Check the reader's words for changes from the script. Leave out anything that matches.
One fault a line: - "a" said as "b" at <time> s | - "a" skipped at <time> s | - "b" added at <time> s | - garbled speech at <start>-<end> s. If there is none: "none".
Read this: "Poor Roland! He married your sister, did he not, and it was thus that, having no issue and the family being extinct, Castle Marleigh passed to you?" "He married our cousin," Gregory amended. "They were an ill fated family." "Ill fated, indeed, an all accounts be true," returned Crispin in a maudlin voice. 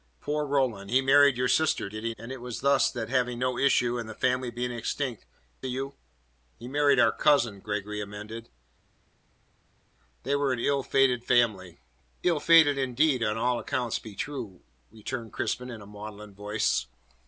- "not" skipped at 2.1 s
- "Castle Marleigh passed" skipped at 5.3 s